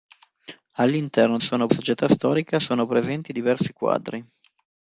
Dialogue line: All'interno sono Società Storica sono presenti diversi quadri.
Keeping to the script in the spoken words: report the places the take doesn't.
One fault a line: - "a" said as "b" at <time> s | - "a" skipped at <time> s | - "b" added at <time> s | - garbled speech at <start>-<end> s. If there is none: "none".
none